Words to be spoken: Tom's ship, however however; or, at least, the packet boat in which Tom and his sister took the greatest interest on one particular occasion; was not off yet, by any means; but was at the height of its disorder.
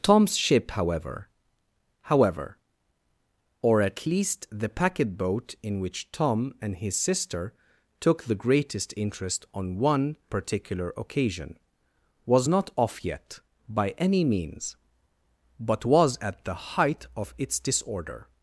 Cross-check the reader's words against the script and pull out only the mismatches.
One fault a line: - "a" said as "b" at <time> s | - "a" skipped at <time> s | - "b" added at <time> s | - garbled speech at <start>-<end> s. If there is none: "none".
none